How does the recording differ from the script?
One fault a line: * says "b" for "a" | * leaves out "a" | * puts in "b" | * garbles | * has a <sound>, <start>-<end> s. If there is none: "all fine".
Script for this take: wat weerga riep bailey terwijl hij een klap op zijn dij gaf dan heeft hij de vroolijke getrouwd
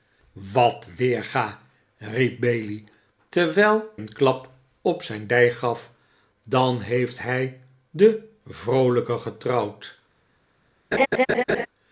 * leaves out "hij"
* has a laugh, 10.9-11.7 s